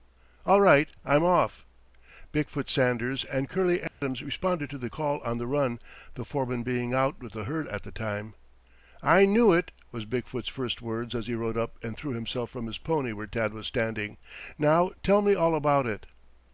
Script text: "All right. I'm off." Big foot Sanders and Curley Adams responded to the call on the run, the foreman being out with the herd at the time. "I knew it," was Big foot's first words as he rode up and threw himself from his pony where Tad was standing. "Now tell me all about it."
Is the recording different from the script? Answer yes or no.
no